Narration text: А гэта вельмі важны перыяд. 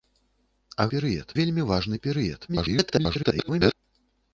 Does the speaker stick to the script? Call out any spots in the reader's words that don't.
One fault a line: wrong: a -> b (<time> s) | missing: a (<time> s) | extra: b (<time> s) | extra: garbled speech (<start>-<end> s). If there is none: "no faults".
wrong: гэта -> перыяд (1.0 s)
extra: garbled speech (2.5-3.7 s)